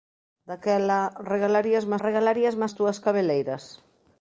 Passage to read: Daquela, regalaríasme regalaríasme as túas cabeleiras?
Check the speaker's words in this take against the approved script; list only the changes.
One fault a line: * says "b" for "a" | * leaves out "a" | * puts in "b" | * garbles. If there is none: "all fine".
all fine